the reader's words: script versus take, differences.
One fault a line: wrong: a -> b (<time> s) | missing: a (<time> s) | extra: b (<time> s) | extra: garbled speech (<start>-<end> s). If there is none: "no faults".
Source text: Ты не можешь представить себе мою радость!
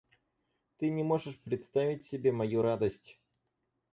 no faults